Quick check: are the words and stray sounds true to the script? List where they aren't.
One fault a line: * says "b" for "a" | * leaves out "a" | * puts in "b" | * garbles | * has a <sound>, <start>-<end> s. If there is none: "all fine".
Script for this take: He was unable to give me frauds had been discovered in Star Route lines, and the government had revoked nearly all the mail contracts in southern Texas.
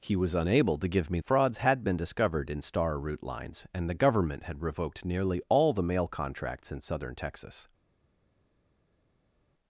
all fine